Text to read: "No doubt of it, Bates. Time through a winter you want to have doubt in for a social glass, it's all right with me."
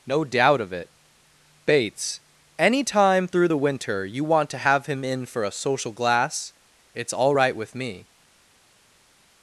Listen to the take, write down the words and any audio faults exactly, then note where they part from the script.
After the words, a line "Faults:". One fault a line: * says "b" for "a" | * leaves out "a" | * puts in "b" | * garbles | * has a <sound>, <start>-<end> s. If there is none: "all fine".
"No doubt of it, Bates. Any time through the winter you want to have him in for a social glass, it's all right with me."
Faults:
* puts in "Any"
* says "the" for "a"
* says "him" for "doubt"